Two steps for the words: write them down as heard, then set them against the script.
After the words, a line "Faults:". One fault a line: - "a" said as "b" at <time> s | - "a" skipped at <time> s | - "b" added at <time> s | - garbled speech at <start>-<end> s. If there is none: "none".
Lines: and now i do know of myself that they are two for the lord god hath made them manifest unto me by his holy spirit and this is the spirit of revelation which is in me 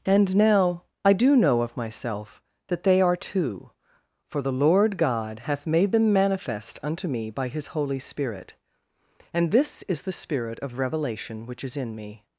and now i do know of myself that they are two for the lord god hath made them manifest unto me by his holy spirit and this is the spirit of revelation which is in me
Faults:
none